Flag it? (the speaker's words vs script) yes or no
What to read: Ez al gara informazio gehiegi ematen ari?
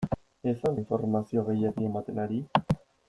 yes